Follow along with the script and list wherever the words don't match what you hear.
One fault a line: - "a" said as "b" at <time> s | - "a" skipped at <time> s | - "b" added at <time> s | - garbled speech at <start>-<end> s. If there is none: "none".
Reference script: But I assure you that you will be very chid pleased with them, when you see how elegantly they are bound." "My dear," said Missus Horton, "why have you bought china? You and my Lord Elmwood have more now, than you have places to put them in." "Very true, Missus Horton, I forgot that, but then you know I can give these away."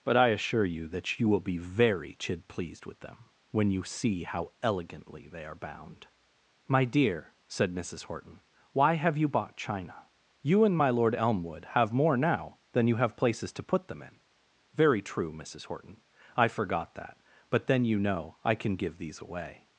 none